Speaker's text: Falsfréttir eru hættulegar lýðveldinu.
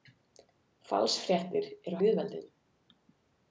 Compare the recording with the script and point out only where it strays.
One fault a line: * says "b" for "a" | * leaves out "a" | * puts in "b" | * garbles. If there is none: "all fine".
* leaves out "hættulegar"